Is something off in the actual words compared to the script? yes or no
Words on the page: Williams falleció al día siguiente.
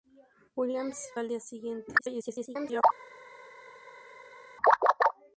yes